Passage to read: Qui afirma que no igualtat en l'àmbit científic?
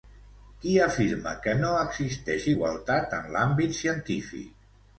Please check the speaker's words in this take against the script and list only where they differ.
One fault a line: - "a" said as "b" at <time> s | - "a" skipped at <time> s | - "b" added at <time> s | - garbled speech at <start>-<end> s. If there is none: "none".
- "existeix" added at 1.8 s